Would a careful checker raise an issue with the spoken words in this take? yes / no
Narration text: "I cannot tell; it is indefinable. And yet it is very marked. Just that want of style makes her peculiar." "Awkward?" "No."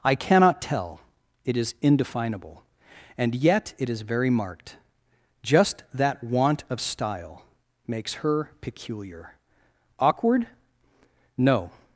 no